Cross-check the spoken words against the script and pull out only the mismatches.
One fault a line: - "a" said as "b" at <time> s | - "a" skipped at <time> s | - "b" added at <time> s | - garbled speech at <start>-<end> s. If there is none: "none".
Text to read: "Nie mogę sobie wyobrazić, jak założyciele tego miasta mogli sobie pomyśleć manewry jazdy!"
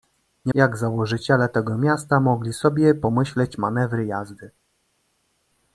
- "mogę sobie wyobrazić" skipped at 0.5 s